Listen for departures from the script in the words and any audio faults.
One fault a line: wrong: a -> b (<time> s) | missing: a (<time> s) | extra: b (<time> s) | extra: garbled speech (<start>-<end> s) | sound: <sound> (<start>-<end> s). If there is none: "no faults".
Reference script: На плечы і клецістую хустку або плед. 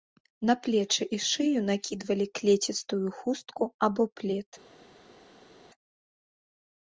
extra: шыю накідвалі (1.3 s)